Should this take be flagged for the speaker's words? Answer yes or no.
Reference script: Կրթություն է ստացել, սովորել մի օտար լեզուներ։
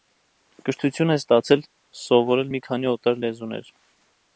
yes